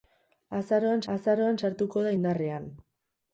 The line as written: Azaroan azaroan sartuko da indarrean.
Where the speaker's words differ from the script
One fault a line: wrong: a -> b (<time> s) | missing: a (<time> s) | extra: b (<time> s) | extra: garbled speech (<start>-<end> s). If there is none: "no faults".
no faults